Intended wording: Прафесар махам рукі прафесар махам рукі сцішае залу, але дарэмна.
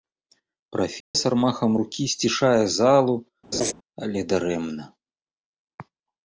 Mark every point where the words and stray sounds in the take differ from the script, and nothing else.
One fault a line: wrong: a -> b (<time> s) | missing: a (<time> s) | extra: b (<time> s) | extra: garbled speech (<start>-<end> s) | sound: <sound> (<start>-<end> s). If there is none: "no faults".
sound: dropout (1.0-1.1 s)
missing: прафесар махам рукі (2.0 s)
sound: laugh (3.5-3.7 s)